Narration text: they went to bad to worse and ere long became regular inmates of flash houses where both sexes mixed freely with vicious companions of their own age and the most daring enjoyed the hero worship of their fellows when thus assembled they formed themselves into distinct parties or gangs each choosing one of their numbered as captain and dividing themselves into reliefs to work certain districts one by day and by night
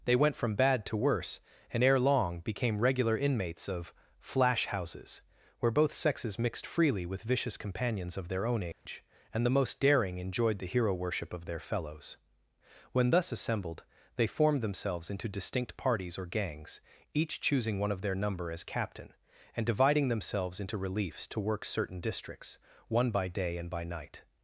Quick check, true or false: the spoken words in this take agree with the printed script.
false